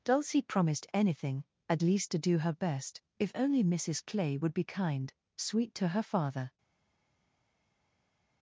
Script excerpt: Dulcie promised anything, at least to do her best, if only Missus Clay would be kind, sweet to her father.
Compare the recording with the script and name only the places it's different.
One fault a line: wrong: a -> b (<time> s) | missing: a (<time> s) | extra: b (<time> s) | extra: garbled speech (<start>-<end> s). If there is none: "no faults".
no faults